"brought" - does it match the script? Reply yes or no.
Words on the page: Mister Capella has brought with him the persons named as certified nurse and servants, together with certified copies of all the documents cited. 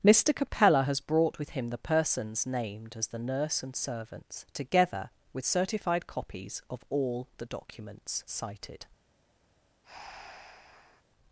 yes